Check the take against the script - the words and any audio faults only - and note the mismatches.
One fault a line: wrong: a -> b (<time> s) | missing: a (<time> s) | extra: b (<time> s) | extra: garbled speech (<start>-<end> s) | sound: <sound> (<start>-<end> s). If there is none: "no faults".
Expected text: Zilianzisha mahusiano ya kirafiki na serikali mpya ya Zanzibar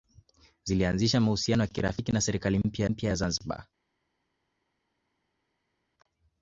extra: mpya (2.8 s)